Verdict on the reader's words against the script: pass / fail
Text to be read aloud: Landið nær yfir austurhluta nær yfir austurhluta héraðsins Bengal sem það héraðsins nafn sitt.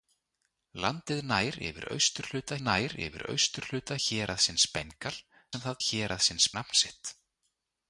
pass